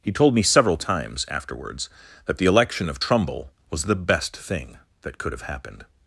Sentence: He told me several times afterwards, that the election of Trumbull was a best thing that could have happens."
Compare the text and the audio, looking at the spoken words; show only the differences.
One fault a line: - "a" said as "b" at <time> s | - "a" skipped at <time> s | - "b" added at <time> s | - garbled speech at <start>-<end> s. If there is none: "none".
- "a" said as "the" at 3.8 s
- "happens" said as "happened" at 5.4 s